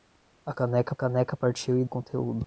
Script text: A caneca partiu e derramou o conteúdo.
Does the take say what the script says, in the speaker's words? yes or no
no